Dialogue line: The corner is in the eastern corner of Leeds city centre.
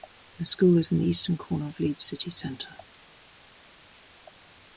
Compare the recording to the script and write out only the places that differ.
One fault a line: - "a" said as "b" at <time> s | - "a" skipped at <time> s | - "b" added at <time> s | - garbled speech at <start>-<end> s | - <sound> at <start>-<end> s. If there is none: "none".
- "corner" said as "school" at 0.5 s